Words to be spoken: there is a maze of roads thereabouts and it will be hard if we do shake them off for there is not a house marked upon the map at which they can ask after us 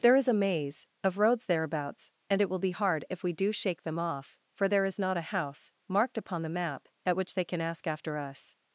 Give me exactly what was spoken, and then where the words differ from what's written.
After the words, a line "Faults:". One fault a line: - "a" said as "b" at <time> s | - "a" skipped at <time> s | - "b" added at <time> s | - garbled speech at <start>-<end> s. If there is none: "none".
there is a maze of roads thereabouts and it will be hard if we do shake them off for there is not a house marked upon the map at which they can ask after us
Faults:
none